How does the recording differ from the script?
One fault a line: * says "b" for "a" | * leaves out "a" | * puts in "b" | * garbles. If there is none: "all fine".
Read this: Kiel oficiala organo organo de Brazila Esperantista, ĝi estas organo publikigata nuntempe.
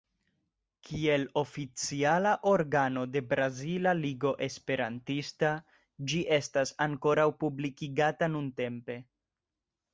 * leaves out "organo"
* puts in "Ligo"
* says "ankoraŭ" for "organo"